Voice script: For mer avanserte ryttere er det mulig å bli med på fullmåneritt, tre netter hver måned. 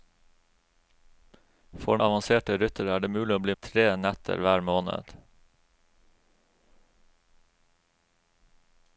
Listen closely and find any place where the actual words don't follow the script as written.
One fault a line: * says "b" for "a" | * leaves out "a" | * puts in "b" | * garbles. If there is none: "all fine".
* leaves out "mer"
* leaves out "med på fullmåneritt"